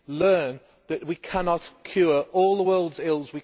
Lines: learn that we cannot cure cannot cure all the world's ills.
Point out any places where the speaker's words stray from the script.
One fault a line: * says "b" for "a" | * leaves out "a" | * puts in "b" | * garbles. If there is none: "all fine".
* leaves out "cannot cure"